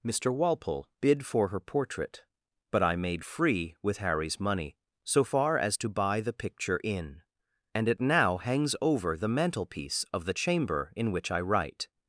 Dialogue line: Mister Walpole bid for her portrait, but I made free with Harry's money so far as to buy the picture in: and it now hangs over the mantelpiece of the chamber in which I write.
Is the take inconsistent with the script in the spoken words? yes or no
no